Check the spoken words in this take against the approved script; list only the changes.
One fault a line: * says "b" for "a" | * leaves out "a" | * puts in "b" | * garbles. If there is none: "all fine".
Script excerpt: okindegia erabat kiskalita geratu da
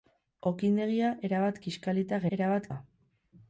* says "erabat" for "geratu"